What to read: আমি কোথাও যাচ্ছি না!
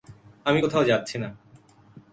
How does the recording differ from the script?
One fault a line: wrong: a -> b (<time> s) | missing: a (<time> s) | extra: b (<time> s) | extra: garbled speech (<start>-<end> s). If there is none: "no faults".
no faults